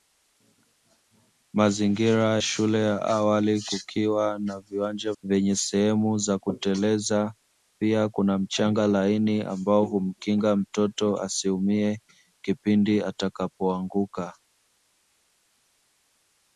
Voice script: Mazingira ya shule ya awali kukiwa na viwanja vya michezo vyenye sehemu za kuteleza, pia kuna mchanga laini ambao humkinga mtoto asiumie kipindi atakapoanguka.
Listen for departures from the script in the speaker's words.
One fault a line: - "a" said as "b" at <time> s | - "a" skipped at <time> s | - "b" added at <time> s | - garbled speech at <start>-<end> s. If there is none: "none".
- "ya" skipped at 2.4 s
- "vya michezo" skipped at 5.1 s